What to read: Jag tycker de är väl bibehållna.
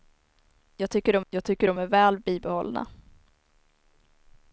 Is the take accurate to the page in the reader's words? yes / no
no